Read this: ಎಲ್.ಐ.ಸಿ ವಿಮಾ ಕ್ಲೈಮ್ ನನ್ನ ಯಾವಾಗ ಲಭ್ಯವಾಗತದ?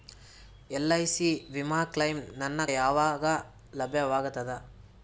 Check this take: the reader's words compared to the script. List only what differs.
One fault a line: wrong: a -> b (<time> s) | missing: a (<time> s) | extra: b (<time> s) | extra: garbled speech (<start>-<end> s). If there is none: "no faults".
no faults